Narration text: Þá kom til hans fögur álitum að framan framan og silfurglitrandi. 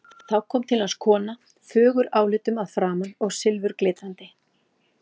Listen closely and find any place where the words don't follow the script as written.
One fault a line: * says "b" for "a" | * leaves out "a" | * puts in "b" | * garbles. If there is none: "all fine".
* puts in "kona"
* leaves out "framan"